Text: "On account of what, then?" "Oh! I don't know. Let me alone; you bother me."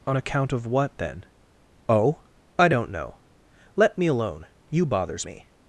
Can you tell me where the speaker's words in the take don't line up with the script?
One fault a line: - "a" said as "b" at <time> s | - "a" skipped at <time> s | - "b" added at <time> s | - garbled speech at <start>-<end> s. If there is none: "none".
- "bother" said as "bothers" at 4.8 s